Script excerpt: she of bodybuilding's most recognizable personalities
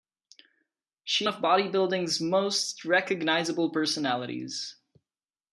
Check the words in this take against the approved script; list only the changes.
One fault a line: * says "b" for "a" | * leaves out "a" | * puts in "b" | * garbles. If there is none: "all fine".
all fine